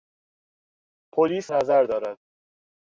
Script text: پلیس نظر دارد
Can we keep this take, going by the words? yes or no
yes